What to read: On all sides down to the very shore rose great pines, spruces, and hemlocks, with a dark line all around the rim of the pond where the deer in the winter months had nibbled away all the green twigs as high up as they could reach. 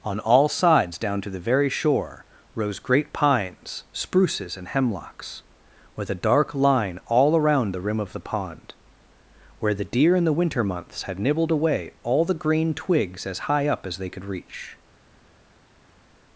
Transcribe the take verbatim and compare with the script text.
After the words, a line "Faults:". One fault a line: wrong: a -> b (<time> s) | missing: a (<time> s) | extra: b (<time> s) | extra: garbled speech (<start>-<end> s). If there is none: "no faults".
On all sides down to the very shore rose great pines, spruces, and hemlocks, with a dark line all around the rim of the pond where the deer in the winter months had nibbled away all the green twigs as high up as they could reach.
Faults:
no faults